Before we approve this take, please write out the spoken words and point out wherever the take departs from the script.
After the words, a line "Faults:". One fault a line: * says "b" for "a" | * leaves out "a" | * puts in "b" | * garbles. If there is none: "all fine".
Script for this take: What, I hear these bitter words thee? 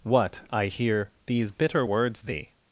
What, I hear these bitter words thee?
Faults:
all fine